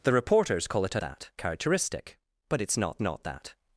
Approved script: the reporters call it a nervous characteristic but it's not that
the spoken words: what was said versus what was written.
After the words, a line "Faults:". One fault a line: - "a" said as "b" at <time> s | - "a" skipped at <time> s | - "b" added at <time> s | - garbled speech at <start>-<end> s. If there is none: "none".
the reporters call it a that characteristic but it's not not that
Faults:
- "nervous" said as "that" at 1.0 s
- "not" added at 3.0 s